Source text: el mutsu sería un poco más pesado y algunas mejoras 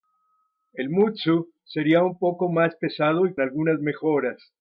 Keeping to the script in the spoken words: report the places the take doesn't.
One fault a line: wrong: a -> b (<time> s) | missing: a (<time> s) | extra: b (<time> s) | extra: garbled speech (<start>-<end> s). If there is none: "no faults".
no faults